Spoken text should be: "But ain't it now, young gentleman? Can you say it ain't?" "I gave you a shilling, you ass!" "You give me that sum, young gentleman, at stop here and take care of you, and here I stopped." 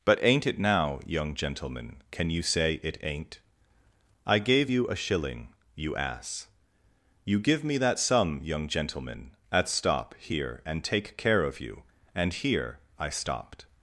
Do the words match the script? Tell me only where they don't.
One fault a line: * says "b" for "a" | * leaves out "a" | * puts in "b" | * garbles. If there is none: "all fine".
all fine